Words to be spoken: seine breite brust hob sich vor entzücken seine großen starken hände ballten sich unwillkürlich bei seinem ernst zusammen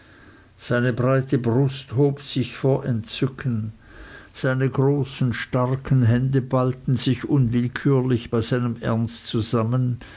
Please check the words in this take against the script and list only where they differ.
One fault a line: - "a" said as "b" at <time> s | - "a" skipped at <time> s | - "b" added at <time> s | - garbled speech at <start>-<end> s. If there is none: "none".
none